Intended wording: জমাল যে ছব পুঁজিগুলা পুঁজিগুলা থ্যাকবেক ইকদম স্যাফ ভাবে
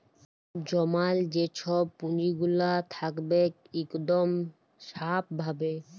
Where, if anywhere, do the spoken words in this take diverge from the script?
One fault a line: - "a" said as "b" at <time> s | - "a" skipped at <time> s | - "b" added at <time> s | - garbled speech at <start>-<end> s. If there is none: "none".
- "পুঁজিগুলা" skipped at 2.7 s